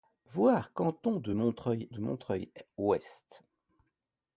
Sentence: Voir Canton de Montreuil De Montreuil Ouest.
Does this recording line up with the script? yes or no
yes